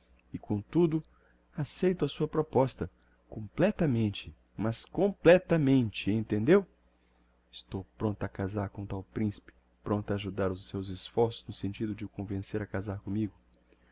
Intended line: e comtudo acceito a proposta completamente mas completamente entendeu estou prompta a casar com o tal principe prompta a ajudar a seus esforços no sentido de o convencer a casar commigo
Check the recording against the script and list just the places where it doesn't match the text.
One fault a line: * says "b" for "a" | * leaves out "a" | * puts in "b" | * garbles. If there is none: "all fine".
* puts in "sua"
* says "os" for "a"